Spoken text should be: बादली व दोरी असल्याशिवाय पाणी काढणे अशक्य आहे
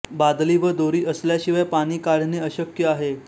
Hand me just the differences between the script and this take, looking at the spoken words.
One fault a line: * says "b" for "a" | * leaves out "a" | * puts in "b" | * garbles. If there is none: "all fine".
all fine